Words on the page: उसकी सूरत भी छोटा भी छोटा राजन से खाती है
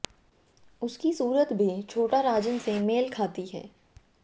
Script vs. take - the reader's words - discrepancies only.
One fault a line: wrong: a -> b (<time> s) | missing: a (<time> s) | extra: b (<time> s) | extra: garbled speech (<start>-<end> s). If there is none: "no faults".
missing: भी छोटा (2.2 s)
extra: मेल (2.8 s)